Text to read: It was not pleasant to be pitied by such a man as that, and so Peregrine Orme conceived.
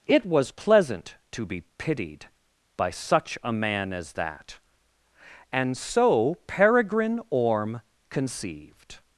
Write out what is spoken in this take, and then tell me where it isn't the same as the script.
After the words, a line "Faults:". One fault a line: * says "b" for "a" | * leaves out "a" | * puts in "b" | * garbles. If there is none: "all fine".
It was pleasant to be pitied by such a man as that, and so Peregrine Orme conceived.
Faults:
* leaves out "not"